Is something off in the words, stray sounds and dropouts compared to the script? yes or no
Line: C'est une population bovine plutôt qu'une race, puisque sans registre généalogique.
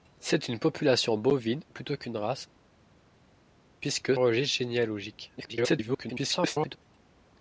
yes